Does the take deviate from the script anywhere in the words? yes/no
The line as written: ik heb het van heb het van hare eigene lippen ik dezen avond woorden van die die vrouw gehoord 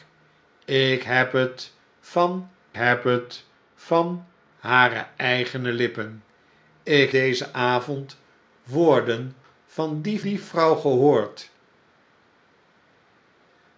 no